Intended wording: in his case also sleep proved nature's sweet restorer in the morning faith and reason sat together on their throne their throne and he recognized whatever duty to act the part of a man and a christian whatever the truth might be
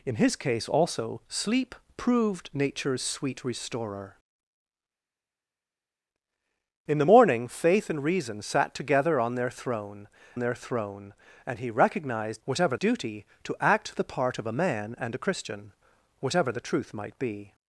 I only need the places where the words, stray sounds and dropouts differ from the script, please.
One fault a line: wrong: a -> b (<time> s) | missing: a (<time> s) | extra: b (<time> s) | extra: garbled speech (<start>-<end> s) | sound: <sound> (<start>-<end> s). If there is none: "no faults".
no faults